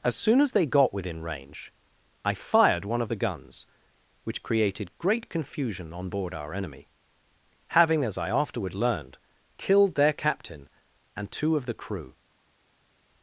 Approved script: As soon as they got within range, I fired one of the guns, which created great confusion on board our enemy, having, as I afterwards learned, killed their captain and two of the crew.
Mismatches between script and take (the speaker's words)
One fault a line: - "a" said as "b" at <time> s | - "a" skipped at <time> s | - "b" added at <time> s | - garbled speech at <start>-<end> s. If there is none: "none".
- "afterwards" said as "afterward" at 8.3 s